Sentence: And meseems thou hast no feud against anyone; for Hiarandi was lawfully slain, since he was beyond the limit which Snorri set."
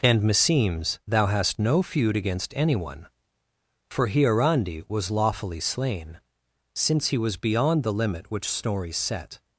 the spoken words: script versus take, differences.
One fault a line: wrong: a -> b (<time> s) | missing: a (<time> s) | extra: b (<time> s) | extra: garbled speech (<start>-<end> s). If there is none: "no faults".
no faults